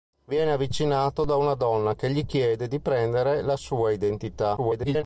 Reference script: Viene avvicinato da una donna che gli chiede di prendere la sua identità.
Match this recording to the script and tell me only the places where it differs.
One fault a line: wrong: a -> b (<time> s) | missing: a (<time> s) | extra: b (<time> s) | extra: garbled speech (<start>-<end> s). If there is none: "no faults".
extra: garbled speech (4.6-5.0 s)